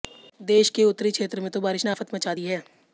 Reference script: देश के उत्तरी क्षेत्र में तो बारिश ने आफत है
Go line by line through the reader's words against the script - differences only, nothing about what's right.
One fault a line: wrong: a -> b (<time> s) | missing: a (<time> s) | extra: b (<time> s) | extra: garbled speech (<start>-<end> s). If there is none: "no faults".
extra: मचा दी (2.1 s)